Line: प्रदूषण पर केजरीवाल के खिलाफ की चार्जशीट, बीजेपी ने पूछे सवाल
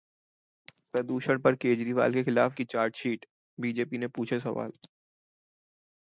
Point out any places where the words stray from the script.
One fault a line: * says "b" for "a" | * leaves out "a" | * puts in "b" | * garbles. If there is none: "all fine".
all fine